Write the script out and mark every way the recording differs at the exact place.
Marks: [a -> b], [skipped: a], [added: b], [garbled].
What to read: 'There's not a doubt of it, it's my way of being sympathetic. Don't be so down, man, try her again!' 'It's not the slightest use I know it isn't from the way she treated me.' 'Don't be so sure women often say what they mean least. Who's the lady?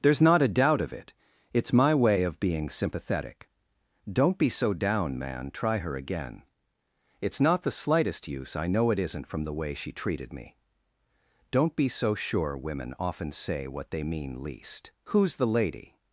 'There's not a doubt of it, it's my way of being sympathetic. Don't be so down, man, try her again!' 'It's not the slightest use I know it isn't from the way she treated me.' 'Don't be so sure women often say what they mean least. Who's the lady?